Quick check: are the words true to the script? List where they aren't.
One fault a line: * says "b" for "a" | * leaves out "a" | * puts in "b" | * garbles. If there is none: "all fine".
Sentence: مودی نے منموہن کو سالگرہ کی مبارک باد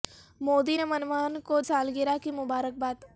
all fine